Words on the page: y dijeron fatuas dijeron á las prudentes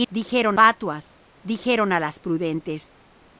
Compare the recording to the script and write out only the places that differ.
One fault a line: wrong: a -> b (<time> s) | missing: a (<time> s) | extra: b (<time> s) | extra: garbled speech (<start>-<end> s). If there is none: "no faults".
no faults